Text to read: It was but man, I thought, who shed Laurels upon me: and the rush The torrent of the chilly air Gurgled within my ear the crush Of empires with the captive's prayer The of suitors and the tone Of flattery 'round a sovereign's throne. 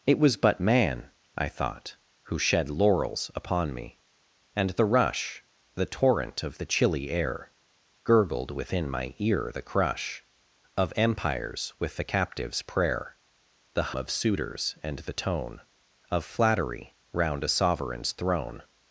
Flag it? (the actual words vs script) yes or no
no